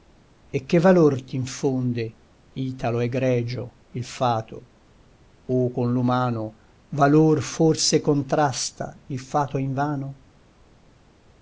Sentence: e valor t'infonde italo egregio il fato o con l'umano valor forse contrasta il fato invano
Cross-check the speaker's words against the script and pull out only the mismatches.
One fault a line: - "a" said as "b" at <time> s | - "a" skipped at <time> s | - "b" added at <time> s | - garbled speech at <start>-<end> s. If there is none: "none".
- "che" added at 0.6 s